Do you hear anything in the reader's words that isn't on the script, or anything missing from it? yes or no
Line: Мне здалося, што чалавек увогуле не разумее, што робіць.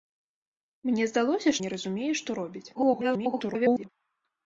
yes